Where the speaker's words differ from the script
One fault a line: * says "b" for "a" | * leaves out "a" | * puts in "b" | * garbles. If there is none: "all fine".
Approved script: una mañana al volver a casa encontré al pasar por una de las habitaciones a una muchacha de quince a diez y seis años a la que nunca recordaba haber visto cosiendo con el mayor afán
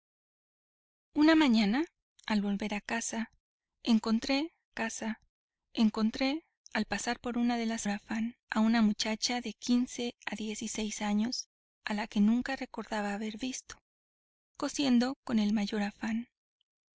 * puts in "casa encontré"
* says "afán" for "habitaciones"